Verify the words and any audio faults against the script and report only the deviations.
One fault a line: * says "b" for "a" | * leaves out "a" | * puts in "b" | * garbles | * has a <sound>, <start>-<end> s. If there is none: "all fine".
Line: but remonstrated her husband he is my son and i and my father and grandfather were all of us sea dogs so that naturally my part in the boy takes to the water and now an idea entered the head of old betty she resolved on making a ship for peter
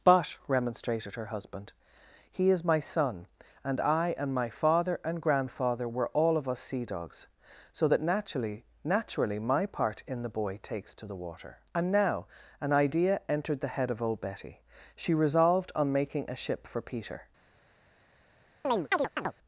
* puts in "naturally"
* has a chirp, 18.6-19.3 s